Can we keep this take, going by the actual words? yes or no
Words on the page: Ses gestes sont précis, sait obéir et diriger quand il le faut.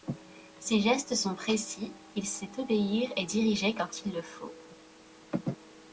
no